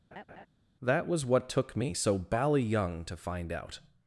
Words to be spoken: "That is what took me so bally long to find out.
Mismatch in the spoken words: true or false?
true